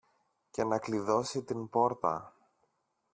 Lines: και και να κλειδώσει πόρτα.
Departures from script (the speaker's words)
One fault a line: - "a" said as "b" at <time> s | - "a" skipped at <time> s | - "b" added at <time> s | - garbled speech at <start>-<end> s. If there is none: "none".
- "και" skipped at 0.6 s
- "την" added at 1.4 s